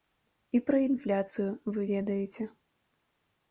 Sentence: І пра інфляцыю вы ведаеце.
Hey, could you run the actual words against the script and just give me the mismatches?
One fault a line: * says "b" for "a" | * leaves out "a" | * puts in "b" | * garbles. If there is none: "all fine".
all fine